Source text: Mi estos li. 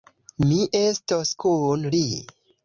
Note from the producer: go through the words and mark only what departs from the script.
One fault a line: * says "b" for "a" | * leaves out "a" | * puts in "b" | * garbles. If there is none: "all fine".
* puts in "kun"